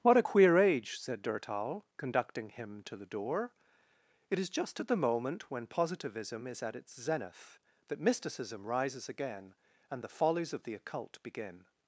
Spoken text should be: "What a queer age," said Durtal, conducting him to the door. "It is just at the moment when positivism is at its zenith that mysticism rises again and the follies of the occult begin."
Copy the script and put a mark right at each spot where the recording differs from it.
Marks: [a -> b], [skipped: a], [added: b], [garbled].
"What a queer age," said Durtal, conducting him to the door. "It is just at the moment when positivism is at its zenith that mysticism rises again and the follies of the occult begin."